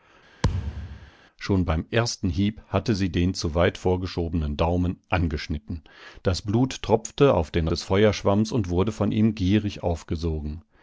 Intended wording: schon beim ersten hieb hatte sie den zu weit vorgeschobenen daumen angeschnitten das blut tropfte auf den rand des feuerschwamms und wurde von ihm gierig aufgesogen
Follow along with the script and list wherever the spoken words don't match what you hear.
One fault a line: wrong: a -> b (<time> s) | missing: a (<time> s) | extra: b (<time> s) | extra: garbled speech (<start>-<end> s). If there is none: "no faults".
missing: rand (7.7 s)